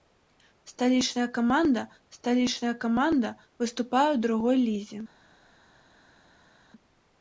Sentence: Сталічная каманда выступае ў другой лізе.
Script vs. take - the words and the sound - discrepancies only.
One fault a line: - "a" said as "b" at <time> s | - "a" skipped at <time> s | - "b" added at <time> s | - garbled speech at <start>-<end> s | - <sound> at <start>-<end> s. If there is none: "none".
- "сталічная каманда" added at 2.2 s